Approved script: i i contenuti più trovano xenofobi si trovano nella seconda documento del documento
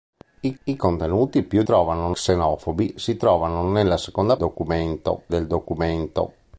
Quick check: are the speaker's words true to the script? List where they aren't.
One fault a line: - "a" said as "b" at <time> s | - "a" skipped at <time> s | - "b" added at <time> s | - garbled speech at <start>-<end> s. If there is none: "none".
none